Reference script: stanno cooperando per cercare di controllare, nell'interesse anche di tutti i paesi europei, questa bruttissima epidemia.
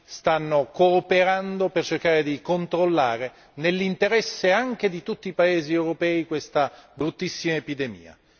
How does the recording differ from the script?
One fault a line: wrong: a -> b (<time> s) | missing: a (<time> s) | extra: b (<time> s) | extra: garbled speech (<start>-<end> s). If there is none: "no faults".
no faults